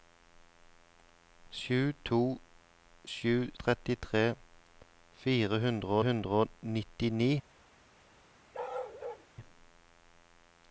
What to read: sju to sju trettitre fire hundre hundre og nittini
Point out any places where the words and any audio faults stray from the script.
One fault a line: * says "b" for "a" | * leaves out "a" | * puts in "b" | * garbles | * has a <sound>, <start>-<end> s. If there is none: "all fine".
* has a bark, 8.5-9.3 s